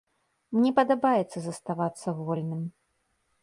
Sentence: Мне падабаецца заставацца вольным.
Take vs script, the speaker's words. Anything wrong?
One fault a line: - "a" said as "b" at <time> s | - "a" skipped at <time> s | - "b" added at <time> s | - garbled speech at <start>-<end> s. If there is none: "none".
none